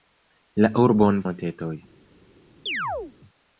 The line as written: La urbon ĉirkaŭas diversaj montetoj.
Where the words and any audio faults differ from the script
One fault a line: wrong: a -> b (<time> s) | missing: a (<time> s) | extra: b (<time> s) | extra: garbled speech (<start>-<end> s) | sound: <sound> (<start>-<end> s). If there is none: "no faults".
missing: ĉirkaŭas diversaj (1.2 s)
sound: chirp (2.7-3.1 s)